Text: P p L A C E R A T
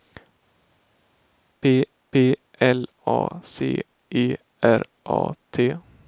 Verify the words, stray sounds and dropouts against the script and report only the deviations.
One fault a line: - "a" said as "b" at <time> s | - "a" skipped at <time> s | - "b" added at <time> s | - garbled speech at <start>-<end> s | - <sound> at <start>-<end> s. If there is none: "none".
none